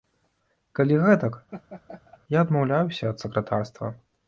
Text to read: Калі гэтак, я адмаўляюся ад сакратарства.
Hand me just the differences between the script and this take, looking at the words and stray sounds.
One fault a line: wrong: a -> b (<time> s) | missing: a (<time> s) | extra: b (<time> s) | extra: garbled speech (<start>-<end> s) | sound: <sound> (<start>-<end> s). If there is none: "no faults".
sound: laugh (1.5-2.2 s)